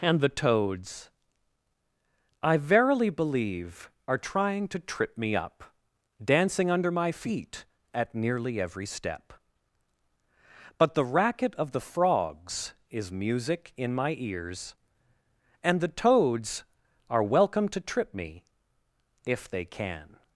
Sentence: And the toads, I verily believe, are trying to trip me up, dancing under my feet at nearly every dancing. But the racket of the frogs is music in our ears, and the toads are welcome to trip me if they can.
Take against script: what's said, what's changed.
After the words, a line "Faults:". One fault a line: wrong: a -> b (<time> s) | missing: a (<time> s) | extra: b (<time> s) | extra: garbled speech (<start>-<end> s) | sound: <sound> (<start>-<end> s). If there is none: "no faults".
And the toads, I verily believe, are trying to trip me up, dancing under my feet at nearly every step. But the racket of the frogs is music in my ears, and the toads are welcome to trip me if they can.
Faults:
wrong: dancing -> step (8.9 s)
wrong: our -> my (13.9 s)